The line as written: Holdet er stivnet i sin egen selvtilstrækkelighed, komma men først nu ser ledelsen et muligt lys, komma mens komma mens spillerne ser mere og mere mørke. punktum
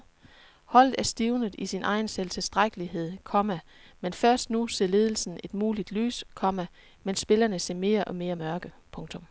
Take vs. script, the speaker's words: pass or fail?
fail